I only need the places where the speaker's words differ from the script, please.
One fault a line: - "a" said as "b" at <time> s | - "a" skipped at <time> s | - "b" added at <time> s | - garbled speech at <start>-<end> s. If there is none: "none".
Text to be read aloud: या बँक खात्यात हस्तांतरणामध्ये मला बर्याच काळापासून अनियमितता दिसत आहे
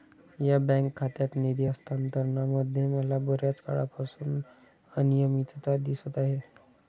- "निधी" added at 1.4 s